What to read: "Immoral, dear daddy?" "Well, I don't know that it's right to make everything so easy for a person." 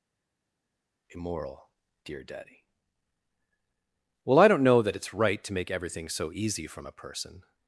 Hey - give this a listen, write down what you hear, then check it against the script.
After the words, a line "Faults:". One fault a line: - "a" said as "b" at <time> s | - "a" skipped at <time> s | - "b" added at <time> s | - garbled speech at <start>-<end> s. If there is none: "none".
"Immoral, dear daddy?" "Well, I don't know that it's right to make everything so easy from a person."
Faults:
- "for" said as "from" at 6.7 s